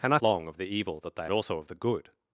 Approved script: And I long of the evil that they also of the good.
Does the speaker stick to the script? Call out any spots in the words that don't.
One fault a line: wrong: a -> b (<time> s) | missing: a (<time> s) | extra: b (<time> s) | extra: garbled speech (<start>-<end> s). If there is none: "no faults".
no faults